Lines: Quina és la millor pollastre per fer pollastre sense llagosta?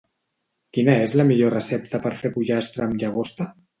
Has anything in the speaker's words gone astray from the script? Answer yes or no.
yes